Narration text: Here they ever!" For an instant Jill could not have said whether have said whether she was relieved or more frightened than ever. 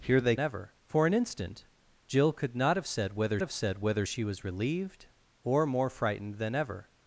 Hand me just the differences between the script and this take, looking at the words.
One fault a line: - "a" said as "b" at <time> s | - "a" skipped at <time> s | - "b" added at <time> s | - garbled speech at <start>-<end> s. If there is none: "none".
none